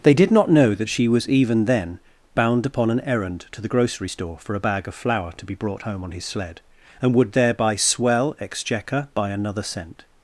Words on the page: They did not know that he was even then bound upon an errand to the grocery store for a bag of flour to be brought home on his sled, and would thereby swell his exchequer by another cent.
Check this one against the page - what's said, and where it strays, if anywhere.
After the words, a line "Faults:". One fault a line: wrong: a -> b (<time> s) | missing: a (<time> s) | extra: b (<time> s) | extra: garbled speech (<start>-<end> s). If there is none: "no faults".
They did not know that she was even then bound upon an errand to the grocery store for a bag of flour to be brought home on his sled, and would thereby swell exchequer by another cent.
Faults:
wrong: he -> she (0.9 s)
missing: his (8.3 s)